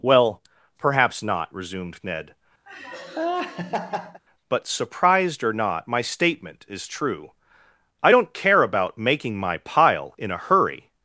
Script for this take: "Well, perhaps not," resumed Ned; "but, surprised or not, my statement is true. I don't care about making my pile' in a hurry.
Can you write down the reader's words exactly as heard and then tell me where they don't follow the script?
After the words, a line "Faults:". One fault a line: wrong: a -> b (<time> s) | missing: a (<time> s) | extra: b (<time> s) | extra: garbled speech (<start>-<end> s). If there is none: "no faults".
"Well, perhaps not," resumed Ned; "but, surprised or not, my statement is true. I don't care about making my pile' in a hurry.
Faults:
no faults